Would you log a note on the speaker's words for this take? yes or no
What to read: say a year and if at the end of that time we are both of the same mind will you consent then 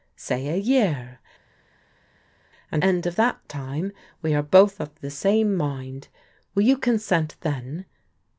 yes